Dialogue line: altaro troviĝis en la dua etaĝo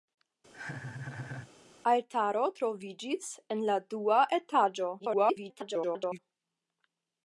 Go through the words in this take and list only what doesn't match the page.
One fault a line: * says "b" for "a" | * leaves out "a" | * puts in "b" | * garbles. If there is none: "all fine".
* garbles